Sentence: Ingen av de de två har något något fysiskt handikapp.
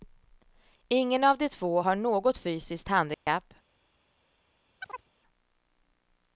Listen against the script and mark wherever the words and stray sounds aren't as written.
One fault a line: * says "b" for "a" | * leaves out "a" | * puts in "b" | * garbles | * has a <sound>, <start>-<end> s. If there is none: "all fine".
* leaves out "de"
* leaves out "något"
* has a dropout, 3.1-3.3 s
* has a chirp, 4.8-5.1 s